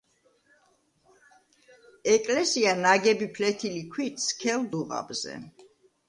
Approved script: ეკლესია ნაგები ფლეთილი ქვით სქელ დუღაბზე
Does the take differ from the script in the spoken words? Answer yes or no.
no